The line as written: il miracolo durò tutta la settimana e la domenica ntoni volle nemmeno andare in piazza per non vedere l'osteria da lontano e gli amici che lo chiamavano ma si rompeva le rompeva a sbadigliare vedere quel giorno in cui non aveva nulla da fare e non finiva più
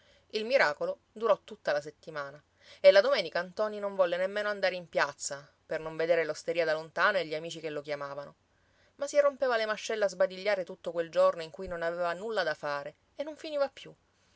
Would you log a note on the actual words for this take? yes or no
yes